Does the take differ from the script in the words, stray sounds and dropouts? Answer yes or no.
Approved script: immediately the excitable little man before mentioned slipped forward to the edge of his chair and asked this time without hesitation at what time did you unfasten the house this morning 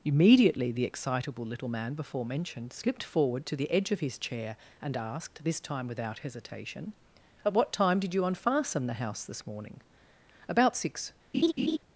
yes